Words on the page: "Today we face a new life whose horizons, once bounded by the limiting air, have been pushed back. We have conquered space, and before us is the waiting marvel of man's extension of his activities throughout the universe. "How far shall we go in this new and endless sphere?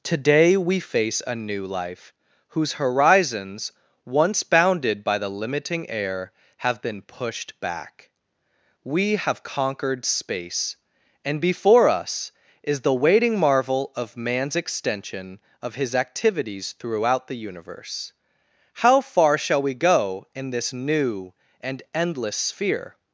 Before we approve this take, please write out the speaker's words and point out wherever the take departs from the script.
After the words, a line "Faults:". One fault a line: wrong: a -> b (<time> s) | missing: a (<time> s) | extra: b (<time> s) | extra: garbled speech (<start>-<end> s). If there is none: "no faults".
"Today we face a new life whose horizons, once bounded by the limiting air, have been pushed back. We have conquered space, and before us is the waiting marvel of man's extension of his activities throughout the universe. "How far shall we go in this new and endless sphere?
Faults:
no faults